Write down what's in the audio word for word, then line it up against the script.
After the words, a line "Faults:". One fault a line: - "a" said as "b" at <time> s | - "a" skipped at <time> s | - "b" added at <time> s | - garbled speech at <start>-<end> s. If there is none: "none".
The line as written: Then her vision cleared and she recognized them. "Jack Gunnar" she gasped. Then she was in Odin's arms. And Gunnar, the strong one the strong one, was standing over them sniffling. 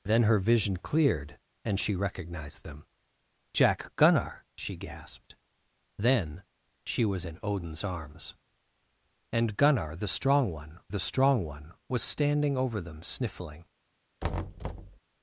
Then her vision cleared and she recognized them. "Jack Gunnar" she gasped. Then she was in Odin's arms. And Gunnar, the strong one the strong one, was standing over them sniffling.
Faults:
none